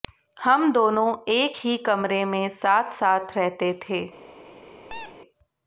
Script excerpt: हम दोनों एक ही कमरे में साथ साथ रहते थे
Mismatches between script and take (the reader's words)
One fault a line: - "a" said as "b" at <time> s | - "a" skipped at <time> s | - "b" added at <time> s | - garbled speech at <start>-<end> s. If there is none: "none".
none